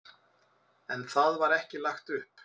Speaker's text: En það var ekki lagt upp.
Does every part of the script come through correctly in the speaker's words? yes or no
yes